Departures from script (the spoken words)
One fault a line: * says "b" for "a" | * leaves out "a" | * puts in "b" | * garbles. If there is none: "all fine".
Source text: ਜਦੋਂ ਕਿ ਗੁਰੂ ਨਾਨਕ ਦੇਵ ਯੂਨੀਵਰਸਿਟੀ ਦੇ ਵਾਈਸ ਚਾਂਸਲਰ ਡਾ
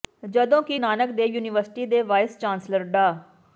* leaves out "ਗੁਰੂ"